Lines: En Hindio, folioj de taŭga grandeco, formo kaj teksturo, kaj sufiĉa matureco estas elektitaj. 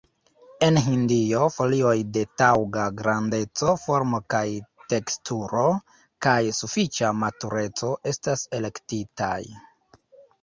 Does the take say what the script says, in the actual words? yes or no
yes